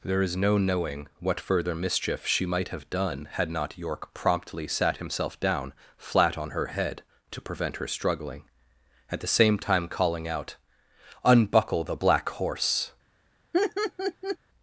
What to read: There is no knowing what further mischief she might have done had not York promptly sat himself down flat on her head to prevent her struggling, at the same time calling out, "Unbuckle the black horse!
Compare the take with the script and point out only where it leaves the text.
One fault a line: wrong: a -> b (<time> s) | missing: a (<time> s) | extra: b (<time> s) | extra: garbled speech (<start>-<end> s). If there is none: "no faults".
no faults